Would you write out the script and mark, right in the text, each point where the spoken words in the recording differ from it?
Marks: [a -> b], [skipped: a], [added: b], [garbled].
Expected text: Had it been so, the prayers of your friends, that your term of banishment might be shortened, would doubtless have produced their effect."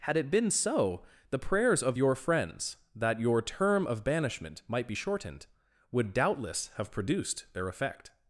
Had it been so, the prayers of your friends, that your term of banishment might be shortened, would doubtless have produced their effect."